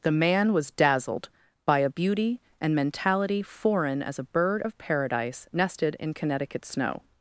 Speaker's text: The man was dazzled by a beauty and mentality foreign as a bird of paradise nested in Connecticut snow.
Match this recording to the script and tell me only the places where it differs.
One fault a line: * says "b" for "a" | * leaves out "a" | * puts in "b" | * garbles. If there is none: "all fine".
all fine